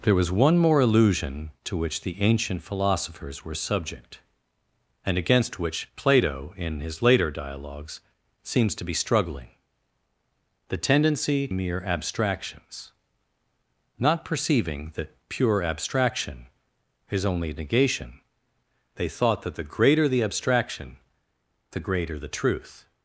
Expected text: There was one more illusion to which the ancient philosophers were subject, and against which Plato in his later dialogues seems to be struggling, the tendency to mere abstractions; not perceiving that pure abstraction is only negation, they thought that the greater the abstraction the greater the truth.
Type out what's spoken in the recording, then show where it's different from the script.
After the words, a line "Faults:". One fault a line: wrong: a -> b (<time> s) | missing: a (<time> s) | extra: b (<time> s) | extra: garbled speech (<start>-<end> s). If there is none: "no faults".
There was one more illusion to which the ancient philosophers were subject, and against which Plato in his later dialogues seems to be struggling, the tendency mere abstractions; not perceiving that pure abstraction is only negation, they thought that the greater the abstraction the greater the truth.
Faults:
missing: to (11.5 s)